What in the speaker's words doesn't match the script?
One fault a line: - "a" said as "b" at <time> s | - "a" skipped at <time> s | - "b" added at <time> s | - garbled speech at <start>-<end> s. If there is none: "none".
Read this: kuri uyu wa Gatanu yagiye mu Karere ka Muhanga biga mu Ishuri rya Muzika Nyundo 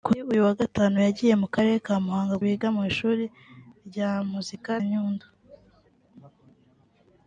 none